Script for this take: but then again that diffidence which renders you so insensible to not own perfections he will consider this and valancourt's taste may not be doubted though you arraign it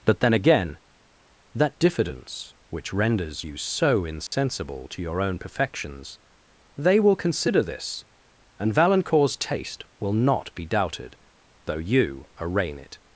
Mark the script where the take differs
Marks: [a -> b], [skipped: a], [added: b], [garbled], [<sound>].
but then again that diffidence which renders you so insensible [dropout] to [not -> your] own perfections [he -> they] will consider this and valancourt's taste [may -> will] not be doubted though you arraign it